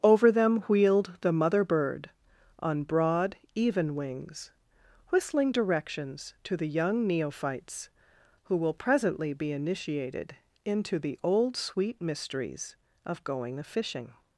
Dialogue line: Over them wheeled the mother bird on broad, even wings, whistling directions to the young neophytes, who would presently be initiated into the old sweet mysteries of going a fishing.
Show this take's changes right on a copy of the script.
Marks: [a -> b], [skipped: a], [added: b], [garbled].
Over them wheeled the mother bird on broad, even wings, whistling directions to the young neophytes, who [would -> will] presently be initiated into the old sweet mysteries of going a fishing.